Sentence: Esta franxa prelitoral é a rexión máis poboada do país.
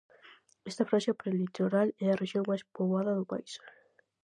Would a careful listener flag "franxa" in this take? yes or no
no